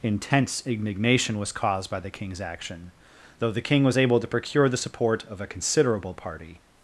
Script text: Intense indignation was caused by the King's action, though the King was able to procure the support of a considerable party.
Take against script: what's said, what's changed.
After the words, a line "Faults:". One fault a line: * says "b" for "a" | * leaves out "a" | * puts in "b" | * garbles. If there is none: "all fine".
Intense indignation was caused by the King's action, though the King was able to procure the support of a considerable party.
Faults:
all fine